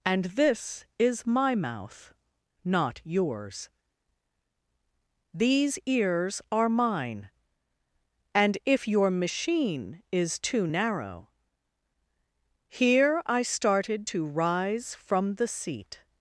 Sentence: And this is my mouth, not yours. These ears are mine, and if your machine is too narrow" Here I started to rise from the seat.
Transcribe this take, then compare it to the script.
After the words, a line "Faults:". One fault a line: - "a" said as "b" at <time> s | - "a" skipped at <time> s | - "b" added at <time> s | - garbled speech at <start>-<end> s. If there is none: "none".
And this is my mouth, not yours. These ears are mine, and if your machine is too narrow" Here I started to rise from the seat.
Faults:
none